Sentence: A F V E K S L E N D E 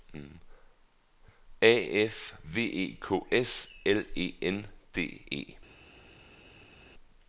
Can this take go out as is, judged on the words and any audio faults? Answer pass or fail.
pass